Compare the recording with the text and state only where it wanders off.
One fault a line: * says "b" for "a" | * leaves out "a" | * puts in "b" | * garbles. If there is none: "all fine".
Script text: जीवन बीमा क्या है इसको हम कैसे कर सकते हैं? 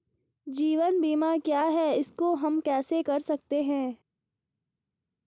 all fine